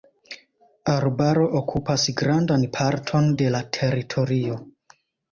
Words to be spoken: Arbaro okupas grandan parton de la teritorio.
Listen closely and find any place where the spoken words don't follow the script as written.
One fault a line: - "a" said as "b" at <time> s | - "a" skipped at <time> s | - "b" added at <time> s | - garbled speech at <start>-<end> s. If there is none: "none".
none